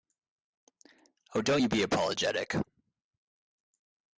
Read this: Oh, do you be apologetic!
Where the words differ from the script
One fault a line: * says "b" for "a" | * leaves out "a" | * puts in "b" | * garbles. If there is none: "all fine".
* says "don't" for "do"